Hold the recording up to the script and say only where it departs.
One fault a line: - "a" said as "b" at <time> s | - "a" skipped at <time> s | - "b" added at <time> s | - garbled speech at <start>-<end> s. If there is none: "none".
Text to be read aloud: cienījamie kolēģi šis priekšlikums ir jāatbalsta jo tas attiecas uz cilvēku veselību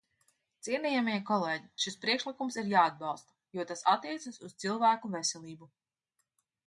none